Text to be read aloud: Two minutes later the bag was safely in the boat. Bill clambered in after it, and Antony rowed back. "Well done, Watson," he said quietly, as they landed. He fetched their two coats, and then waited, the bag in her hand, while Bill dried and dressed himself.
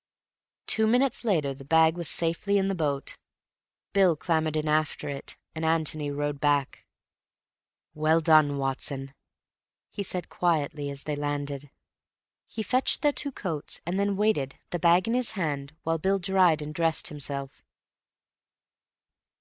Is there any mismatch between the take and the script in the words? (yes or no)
yes